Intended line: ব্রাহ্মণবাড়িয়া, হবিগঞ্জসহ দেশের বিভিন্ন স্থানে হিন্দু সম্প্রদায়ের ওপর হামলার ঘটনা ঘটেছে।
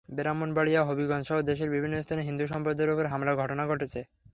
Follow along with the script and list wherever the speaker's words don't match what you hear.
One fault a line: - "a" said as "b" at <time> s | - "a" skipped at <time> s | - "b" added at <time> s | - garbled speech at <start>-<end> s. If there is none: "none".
none